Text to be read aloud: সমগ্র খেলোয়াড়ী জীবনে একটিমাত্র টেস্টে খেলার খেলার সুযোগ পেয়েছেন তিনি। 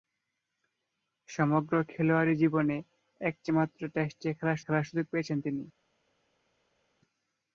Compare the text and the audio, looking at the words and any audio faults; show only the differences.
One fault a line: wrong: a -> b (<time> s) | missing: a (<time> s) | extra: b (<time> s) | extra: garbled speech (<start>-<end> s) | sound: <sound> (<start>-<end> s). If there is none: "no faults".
no faults